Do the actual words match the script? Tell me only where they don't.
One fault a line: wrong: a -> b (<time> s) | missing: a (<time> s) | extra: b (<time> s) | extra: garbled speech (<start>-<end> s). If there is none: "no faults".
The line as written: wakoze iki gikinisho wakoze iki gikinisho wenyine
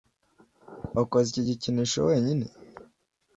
missing: wakoze iki gikinisho (2.0 s)